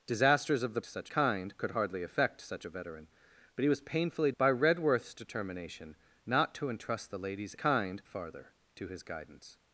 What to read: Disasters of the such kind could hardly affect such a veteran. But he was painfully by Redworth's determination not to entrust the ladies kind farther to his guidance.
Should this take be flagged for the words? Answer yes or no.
no